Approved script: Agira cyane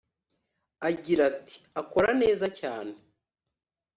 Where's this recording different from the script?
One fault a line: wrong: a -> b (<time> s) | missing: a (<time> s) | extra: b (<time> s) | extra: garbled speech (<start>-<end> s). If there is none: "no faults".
extra: ati Akora neza (1.3 s)